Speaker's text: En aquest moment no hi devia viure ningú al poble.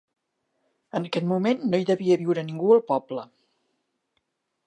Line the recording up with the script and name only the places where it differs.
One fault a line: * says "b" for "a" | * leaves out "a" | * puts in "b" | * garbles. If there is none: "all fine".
all fine